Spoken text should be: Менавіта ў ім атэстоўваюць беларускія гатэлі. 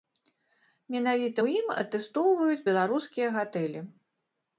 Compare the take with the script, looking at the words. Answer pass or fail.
pass